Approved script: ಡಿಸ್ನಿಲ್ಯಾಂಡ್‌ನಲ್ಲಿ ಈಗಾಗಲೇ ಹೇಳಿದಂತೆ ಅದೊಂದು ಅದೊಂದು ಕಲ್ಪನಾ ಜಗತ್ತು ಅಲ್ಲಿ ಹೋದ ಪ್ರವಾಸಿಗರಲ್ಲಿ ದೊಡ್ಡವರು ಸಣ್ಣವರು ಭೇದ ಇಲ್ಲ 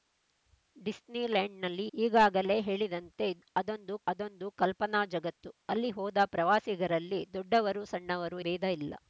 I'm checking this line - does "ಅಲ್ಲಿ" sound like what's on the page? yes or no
yes